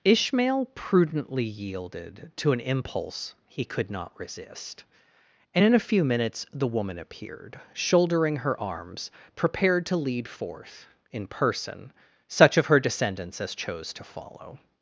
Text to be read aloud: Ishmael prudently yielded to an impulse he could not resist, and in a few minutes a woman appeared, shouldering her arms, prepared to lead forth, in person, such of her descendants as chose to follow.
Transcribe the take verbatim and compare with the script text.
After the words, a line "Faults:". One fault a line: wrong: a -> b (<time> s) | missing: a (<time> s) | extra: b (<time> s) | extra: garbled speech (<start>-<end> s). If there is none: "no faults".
Ishmael prudently yielded to an impulse he could not resist, and in a few minutes the woman appeared, shouldering her arms, prepared to lead forth, in person, such of her descendants as chose to follow.
Faults:
wrong: a -> the (6.5 s)